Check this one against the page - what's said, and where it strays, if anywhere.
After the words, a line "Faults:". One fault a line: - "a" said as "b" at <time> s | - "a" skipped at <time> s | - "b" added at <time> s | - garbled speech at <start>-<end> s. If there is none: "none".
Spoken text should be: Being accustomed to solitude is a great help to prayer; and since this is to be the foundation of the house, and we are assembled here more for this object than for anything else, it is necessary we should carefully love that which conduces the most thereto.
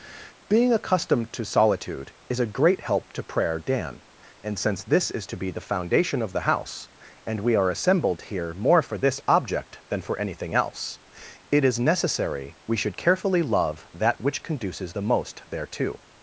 Being accustomed to solitude is a great help to prayer; dan and since this is to be the foundation of the house, and we are assembled here more for this object than for anything else, it is necessary we should carefully love that which conduces the most thereto.
Faults:
- "dan" added at 3.6 s